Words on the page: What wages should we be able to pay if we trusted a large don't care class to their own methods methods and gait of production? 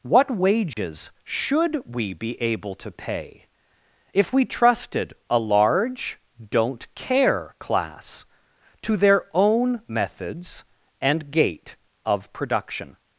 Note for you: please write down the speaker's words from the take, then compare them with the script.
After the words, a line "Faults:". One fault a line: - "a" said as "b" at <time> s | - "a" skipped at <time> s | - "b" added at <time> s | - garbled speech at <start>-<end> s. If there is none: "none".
What wages should we be able to pay if we trusted a large don't care class to their own methods and gait of production?
Faults:
- "methods" skipped at 10.6 s